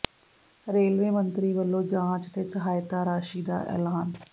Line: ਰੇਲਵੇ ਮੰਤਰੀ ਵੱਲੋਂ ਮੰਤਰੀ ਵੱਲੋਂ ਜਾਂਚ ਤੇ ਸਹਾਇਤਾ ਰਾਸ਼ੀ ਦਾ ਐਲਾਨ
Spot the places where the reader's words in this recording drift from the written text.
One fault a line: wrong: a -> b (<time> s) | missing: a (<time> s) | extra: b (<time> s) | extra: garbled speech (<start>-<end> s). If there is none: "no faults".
missing: ਮੰਤਰੀ ਵੱਲੋਂ (1.8 s)